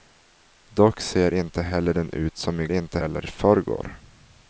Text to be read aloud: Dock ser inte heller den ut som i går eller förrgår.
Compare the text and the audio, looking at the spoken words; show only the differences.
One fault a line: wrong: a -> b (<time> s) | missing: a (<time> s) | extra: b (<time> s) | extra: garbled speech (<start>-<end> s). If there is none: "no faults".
wrong: går -> inte (2.7 s)